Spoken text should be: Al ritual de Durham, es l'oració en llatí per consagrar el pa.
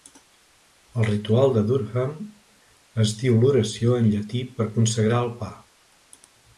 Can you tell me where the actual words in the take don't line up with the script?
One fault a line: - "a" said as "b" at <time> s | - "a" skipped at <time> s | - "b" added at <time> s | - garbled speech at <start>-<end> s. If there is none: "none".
- "diu" added at 3.2 s